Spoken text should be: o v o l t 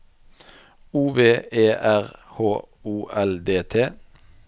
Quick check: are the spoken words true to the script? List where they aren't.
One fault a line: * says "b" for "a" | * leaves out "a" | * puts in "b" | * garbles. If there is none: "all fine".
* puts in "e r h"
* puts in "d"